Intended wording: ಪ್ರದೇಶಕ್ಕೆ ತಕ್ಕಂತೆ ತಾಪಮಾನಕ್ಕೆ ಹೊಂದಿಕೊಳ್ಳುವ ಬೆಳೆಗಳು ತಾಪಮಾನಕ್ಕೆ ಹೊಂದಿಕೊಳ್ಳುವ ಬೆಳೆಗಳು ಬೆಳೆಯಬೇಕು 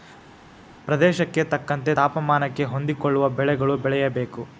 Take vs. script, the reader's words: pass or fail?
fail